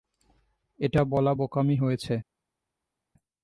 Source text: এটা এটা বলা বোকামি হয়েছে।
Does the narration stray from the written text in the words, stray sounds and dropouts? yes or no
yes